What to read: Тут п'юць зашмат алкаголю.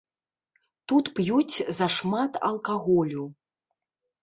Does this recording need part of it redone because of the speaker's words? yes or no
no